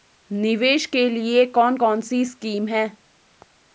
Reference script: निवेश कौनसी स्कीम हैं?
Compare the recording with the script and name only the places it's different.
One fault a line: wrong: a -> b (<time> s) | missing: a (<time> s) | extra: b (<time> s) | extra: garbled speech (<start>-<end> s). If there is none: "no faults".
extra: के लिए कौन (0.8 s)